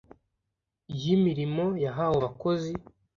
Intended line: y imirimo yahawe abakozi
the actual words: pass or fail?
pass